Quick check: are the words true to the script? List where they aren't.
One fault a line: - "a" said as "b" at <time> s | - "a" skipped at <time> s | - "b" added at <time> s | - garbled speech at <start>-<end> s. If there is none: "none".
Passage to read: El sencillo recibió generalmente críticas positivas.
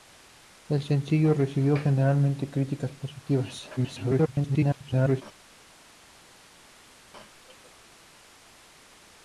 - garbled speech at 3.8-5.2 s